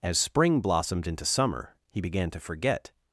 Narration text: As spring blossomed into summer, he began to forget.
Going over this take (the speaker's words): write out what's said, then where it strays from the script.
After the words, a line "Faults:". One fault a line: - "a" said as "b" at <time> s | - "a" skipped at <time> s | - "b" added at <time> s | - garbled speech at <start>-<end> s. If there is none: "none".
As spring blossomed into summer, he began to forget.
Faults:
none